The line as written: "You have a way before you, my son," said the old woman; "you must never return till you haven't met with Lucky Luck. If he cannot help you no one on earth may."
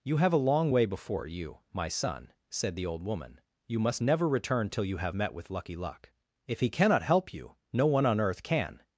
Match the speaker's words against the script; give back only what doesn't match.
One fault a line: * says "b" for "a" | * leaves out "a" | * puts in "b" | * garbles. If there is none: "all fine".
* puts in "long"
* says "have" for "haven't"
* says "can" for "may"